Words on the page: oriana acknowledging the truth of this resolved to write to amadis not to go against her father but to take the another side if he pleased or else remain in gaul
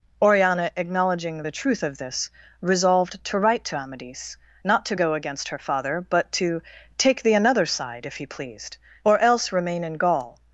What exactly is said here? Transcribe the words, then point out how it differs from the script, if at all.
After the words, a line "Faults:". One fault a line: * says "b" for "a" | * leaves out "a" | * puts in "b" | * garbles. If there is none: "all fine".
oriana acknowledging the truth of this resolved to write to amadis not to go against her father but to take the another side if he pleased or else remain in gaul
Faults:
all fine